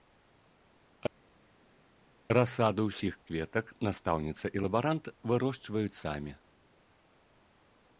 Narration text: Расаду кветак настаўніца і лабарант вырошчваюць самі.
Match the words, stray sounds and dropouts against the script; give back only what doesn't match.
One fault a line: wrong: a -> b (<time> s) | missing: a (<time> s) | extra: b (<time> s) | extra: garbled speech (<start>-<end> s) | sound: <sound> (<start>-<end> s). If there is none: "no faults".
extra: ўсіх (2.9 s)